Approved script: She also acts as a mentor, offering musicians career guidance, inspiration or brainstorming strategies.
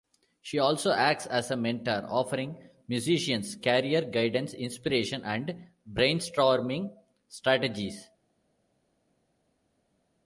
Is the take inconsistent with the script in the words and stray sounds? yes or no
yes